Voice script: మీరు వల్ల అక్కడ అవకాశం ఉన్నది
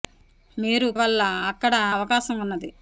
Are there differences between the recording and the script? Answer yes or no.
no